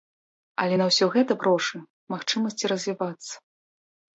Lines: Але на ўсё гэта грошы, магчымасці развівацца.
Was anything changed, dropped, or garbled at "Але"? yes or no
no